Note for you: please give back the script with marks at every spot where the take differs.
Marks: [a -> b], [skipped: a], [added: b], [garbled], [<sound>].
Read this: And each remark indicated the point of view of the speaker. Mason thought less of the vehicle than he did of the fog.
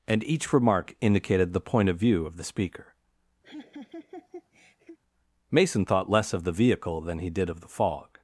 And each remark indicated the point of view of the speaker. [laugh] Mason thought less of the vehicle than he did of the fog.